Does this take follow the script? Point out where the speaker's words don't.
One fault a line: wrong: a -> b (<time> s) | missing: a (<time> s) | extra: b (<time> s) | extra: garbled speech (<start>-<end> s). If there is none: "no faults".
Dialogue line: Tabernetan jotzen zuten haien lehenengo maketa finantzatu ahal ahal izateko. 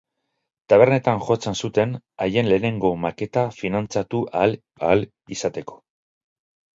no faults